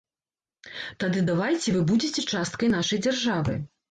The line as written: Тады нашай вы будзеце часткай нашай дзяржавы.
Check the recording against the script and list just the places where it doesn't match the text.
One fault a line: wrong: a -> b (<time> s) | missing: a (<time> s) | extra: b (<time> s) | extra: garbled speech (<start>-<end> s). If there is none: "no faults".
wrong: нашай -> давайце (1.3 s)